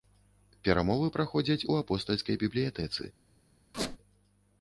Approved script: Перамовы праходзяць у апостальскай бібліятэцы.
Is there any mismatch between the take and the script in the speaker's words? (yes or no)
no